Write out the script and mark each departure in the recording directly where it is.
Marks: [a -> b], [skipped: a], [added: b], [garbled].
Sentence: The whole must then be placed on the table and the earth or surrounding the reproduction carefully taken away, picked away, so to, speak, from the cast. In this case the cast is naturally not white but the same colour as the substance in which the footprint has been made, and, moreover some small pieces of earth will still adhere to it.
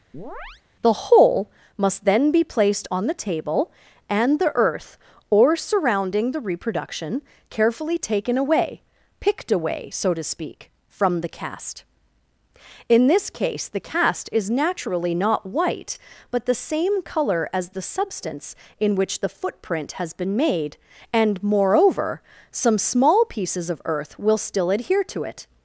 The whole must then be placed on the table and the earth or surrounding the reproduction carefully taken away, picked away, so to, speak, from the cast. In this case the cast is naturally not white but the same colour as the substance in which the footprint has been made, and, moreover some small pieces of earth will still adhere to it.